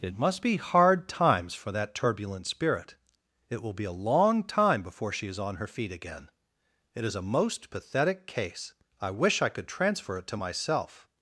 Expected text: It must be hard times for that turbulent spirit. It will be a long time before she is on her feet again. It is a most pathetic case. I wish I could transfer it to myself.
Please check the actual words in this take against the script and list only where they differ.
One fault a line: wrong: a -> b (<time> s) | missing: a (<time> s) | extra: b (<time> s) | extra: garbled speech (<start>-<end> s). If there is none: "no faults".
no faults